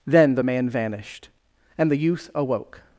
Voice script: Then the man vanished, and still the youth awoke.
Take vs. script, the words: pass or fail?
fail